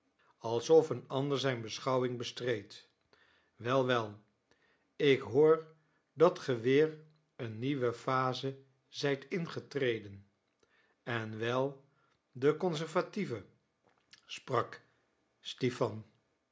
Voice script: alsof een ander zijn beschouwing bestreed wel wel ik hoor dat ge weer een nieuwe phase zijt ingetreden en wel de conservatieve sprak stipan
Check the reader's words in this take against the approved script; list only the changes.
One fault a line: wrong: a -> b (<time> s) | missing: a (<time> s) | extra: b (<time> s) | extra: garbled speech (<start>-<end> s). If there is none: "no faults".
no faults